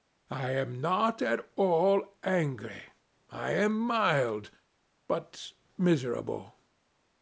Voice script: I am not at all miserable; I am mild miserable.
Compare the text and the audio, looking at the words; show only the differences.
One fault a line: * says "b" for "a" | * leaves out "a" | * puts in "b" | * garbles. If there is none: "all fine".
* says "angry" for "miserable"
* puts in "but"